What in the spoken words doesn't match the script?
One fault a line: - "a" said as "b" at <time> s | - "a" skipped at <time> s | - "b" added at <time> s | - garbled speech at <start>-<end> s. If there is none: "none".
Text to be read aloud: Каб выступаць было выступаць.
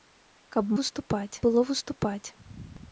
none